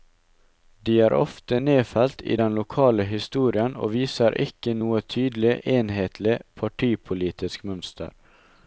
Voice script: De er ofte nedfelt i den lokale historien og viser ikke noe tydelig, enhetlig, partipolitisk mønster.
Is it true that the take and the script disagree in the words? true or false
false